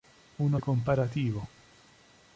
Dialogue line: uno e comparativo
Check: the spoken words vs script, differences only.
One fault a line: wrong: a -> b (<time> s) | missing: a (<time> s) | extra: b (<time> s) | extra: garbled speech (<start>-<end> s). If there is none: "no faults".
no faults